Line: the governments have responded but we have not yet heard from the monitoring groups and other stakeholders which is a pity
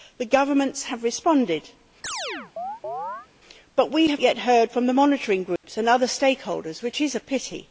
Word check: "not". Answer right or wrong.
wrong